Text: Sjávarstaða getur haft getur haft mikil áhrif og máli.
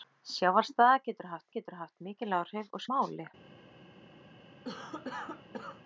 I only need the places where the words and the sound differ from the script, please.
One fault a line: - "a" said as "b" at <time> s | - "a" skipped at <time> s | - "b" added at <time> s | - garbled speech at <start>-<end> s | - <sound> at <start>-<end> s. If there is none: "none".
- cough at 4.6-5.8 s